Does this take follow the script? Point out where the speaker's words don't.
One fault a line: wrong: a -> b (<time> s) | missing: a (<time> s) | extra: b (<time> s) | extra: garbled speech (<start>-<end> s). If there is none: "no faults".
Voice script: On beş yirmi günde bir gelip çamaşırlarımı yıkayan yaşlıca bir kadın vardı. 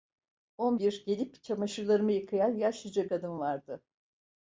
missing: beş yirmi günde (0.8 s)
missing: bir (3.1 s)